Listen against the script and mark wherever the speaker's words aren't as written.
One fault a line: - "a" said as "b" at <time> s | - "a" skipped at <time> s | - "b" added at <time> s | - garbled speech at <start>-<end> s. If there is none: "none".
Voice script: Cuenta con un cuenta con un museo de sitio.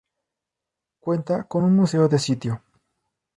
- "cuenta con un" skipped at 1.8 s